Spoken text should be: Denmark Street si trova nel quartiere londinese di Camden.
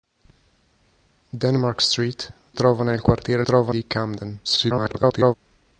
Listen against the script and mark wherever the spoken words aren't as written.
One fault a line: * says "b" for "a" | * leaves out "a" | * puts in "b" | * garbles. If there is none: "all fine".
* leaves out "si"
* says "trova" for "londinese"
* garbles